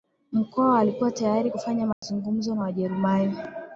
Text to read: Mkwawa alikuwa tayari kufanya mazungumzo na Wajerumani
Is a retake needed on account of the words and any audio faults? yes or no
yes